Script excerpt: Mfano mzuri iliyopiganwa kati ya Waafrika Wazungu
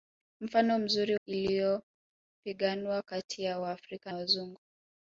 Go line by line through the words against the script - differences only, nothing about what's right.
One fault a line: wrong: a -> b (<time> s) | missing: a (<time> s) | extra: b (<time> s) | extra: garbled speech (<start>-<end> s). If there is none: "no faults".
no faults